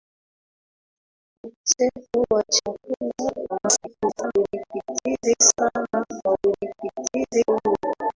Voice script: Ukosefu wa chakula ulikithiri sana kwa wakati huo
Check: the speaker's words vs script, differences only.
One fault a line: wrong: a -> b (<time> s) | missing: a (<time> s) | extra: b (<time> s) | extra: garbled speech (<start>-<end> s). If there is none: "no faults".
extra: garbled speech (3.5-4.3 s)
wrong: wakati -> ulikithiri (6.4 s)